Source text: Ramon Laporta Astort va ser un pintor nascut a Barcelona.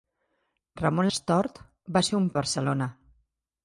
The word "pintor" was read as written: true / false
false